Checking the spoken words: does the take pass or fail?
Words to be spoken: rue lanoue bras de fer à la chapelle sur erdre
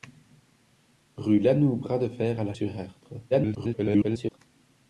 fail